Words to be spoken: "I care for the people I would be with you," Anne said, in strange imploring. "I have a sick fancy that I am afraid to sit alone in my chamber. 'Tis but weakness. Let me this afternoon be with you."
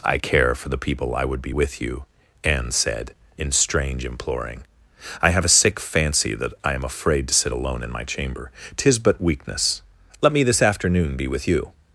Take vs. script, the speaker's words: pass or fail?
pass